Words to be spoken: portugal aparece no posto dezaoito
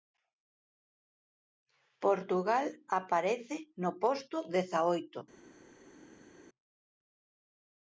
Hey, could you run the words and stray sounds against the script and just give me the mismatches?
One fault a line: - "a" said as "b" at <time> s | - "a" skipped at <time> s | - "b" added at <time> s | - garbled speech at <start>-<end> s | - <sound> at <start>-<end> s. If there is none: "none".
none